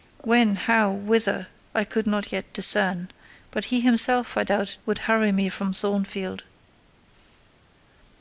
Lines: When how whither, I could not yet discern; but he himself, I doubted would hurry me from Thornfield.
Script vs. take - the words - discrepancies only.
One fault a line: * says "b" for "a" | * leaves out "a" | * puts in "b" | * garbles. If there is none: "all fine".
all fine